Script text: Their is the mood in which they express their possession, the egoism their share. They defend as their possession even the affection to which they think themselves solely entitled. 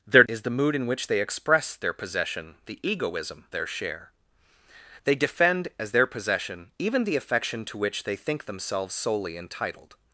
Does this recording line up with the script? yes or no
yes